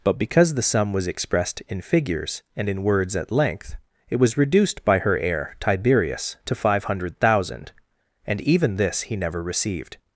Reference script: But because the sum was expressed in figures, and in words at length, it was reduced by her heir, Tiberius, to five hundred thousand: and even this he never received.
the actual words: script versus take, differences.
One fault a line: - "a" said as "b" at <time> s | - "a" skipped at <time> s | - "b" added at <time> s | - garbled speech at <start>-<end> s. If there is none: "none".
none